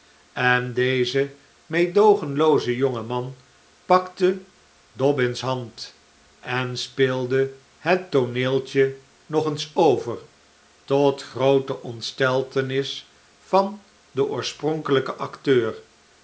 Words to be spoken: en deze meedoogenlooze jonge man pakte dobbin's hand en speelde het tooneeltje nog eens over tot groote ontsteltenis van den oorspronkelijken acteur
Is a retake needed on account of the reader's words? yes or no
no